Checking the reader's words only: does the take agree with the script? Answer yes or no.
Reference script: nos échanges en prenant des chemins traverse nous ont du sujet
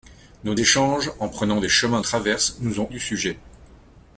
yes